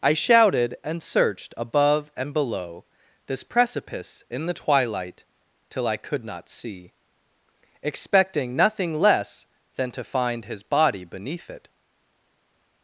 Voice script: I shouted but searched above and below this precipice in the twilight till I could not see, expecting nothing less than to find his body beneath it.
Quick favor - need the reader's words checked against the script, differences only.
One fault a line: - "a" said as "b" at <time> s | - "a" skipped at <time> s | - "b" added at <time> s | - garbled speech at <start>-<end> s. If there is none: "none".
- "but" said as "and" at 0.8 s